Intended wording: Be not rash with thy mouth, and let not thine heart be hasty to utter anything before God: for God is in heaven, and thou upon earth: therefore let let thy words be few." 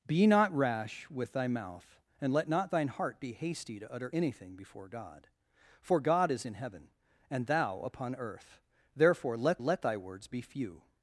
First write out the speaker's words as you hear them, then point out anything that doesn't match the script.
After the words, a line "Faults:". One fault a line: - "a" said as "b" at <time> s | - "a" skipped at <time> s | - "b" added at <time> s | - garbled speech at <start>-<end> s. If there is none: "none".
Be not rash with thy mouth, and let not thine heart be hasty to utter anything before God: for God is in heaven, and thou upon earth: therefore let let thy words be few."
Faults:
none